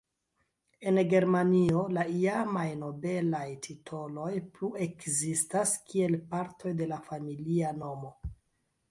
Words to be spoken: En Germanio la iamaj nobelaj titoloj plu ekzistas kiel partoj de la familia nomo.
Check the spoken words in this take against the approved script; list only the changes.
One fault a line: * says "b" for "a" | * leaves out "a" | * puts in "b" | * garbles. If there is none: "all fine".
all fine